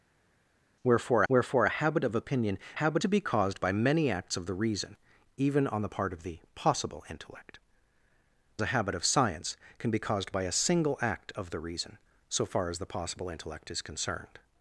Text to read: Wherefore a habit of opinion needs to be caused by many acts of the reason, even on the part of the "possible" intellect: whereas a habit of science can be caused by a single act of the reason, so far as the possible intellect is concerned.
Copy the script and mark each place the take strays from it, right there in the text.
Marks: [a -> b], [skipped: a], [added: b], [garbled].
Wherefore [added: wherefore] a habit of opinion [needs -> habit] to be caused by many acts of the reason, even on the part of the "possible" intellect: [skipped: whereas] a habit of science can be caused by a single act of the reason, so far as the possible intellect is concerned.